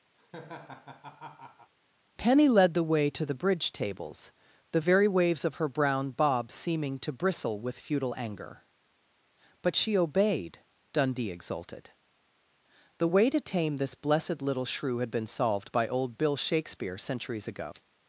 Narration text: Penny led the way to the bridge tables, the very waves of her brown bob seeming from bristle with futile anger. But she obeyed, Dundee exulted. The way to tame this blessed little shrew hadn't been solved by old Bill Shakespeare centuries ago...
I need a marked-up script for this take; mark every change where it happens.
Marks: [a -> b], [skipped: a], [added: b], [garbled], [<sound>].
[laugh] Penny led the way to the bridge tables, the very waves of her brown bob seeming [from -> to] bristle with futile anger. But she obeyed, Dundee exulted. The way to tame this blessed little shrew [hadn't -> had] been solved by old Bill Shakespeare centuries ago...